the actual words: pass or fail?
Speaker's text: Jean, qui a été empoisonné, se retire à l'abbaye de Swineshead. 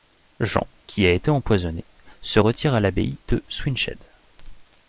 pass